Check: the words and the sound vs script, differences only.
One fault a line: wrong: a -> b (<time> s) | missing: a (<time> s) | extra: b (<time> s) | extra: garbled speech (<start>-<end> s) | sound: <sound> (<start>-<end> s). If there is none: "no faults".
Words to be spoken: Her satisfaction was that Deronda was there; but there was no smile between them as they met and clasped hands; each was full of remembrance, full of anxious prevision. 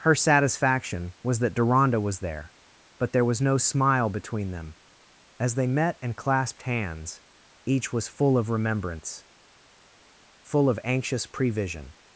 no faults